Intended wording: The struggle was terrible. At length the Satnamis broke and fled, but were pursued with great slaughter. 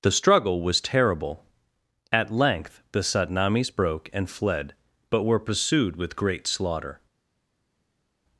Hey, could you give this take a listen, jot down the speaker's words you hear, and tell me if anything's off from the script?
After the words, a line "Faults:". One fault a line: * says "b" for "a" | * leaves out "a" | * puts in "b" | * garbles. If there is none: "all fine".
The struggle was terrible. At length the Satnamis broke and fled, but were pursued with great slaughter.
Faults:
all fine